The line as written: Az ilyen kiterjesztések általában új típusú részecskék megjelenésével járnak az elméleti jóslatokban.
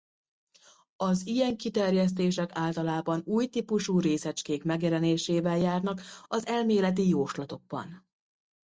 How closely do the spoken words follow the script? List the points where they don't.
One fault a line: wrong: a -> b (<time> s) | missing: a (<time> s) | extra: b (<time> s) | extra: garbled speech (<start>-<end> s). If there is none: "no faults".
no faults